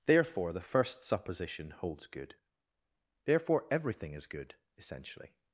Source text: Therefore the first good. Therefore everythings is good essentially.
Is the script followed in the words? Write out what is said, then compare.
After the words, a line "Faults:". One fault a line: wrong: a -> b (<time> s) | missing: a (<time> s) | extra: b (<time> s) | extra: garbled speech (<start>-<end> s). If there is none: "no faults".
Therefore the first supposition holds good. Therefore everything is good essentially.
Faults:
extra: supposition holds (1.0 s)
wrong: everythings -> everything (3.7 s)